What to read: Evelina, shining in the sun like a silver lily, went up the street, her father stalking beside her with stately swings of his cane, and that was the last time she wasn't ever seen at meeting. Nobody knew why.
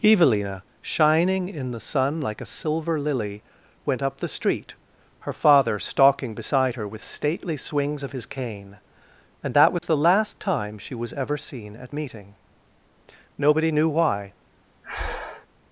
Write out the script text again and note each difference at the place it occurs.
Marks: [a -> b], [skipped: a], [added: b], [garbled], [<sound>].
Evelina, shining in the sun like a silver lily, went up the street, her father stalking beside her with stately swings of his cane, and that was [dropout] the last time she [wasn't -> was] ever seen at meeting. Nobody knew why. [breath]